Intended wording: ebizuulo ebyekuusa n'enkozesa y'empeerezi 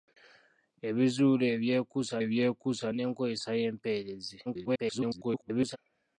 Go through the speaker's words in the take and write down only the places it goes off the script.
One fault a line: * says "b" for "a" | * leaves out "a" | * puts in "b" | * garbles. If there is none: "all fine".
* puts in "ebyekuusa"
* garbles